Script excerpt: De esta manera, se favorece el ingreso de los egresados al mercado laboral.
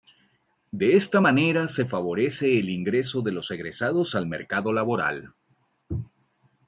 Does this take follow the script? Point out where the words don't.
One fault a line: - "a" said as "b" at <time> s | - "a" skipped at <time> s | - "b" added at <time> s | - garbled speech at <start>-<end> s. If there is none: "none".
none